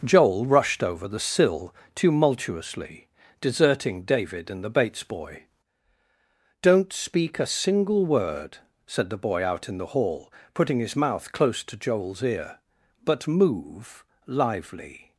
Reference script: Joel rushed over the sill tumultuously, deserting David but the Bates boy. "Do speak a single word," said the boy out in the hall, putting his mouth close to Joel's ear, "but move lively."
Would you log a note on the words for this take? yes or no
yes